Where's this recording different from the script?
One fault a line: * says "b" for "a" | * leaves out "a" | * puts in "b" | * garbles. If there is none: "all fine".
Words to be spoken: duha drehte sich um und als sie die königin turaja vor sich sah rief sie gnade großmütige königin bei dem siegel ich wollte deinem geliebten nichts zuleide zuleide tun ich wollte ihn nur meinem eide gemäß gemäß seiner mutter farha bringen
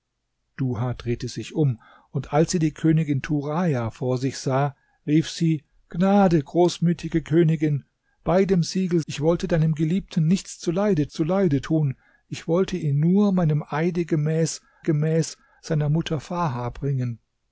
all fine